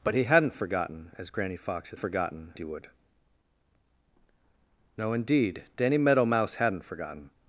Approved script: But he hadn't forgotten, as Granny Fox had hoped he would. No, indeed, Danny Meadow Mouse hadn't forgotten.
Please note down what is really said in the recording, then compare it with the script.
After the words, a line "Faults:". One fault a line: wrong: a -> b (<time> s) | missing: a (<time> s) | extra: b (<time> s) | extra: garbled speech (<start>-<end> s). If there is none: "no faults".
But he hadn't forgotten, as Granny Fox had forgotten he would. No, indeed, Danny Meadow Mouse hadn't forgotten.
Faults:
wrong: hoped -> forgotten (2.0 s)